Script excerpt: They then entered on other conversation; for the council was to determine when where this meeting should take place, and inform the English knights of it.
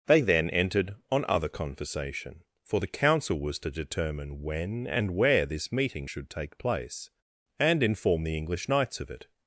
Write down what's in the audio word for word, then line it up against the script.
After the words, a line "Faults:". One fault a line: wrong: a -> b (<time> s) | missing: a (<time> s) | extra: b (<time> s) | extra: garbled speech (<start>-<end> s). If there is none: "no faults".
They then entered on other conversation; for the council was to determine when and where this meeting should take place, and inform the English knights of it.
Faults:
extra: and (4.9 s)